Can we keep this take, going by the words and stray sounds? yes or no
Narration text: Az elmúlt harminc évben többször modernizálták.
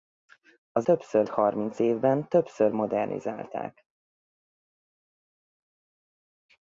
no